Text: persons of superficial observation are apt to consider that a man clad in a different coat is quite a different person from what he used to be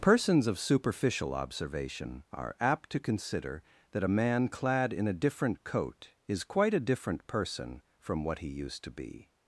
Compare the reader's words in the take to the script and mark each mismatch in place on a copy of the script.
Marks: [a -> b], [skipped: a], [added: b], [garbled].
persons of superficial observation are apt to consider that a man clad in a different coat is quite a different person from what he used to be